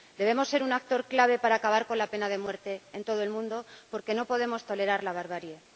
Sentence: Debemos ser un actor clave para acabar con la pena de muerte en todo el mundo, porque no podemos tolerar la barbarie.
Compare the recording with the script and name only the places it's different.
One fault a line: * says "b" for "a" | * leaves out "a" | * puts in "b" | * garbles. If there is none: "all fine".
all fine